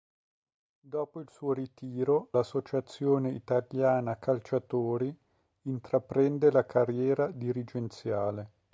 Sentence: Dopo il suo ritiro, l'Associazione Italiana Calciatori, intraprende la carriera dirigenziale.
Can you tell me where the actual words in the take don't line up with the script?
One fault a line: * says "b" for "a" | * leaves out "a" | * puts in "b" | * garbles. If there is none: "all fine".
all fine